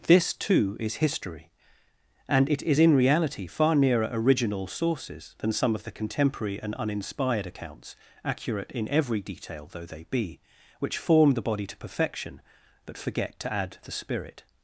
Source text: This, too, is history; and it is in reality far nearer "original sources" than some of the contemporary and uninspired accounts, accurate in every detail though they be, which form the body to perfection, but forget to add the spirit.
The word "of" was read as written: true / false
true